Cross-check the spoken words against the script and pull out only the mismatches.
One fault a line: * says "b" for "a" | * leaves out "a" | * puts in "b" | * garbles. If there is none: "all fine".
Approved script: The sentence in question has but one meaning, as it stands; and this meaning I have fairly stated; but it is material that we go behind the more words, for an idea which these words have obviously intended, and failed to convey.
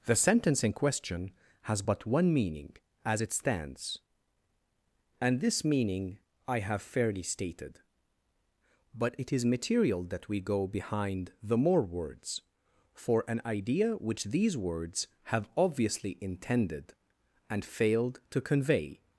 all fine